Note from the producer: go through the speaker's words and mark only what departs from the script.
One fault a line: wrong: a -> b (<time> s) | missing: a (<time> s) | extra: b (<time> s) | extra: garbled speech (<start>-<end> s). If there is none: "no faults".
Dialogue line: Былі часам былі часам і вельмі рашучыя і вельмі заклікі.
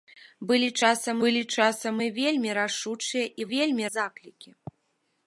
no faults